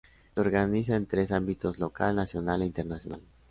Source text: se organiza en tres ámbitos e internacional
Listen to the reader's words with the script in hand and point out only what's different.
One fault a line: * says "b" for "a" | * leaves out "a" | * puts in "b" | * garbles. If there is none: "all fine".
* puts in "local nacional"